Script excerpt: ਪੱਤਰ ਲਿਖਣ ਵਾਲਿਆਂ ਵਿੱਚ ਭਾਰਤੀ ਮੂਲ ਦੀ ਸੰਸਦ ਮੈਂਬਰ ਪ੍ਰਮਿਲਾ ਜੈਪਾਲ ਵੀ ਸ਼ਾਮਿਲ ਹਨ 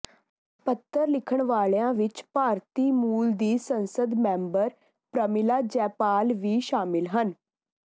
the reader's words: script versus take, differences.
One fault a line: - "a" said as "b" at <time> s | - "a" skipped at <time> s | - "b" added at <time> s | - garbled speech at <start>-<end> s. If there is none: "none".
none